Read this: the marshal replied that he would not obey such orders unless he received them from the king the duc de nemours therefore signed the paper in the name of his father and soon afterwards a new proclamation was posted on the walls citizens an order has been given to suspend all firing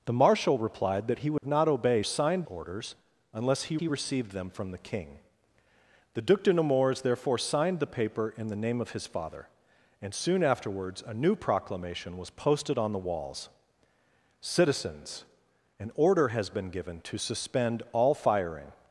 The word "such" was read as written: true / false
false